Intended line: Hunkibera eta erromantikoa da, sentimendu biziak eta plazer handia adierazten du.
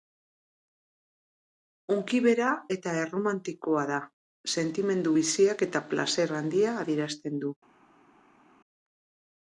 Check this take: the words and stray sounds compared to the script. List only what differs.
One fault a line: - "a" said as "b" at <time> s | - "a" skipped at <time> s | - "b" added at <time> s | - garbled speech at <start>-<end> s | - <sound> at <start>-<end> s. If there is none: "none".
none